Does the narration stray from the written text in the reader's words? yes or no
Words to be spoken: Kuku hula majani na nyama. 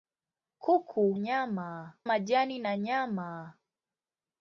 yes